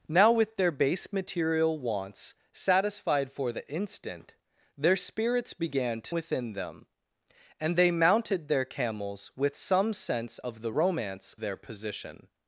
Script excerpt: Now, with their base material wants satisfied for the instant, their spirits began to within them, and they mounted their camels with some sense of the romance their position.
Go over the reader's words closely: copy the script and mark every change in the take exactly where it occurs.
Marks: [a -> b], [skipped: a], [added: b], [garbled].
Now, with their base material wants satisfied for the instant, their spirits began to within them, and they mounted their camels with some sense of the romance their position.